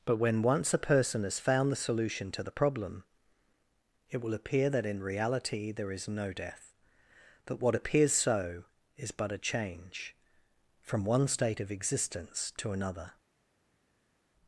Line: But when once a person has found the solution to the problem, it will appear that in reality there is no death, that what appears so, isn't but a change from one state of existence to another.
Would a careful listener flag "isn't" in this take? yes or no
yes